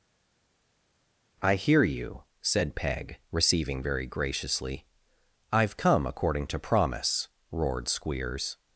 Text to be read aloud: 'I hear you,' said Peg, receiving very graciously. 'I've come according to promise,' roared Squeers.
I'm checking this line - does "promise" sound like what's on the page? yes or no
yes